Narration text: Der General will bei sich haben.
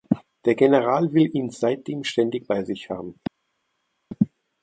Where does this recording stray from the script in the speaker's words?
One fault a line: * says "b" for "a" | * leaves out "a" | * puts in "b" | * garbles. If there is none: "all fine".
* puts in "ihn seitdem ständig"